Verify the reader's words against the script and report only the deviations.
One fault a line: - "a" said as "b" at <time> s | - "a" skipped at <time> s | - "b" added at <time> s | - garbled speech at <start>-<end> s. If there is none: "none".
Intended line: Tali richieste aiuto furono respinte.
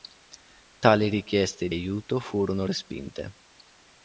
none